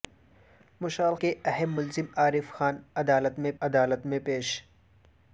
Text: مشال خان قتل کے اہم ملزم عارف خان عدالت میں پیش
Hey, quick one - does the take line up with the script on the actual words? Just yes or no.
no